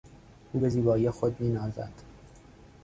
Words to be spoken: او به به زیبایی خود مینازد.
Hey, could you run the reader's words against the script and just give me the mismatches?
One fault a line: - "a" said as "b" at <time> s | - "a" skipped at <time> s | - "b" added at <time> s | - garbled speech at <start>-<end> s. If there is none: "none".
- "به" skipped at 0.7 s